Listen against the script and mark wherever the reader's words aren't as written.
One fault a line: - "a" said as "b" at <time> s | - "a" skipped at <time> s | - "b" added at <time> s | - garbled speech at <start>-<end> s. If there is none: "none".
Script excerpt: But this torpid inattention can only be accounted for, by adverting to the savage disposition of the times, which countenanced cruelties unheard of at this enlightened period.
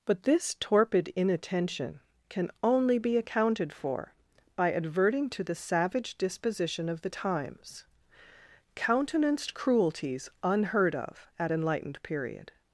- "which" skipped at 7.8 s
- "this" skipped at 11.5 s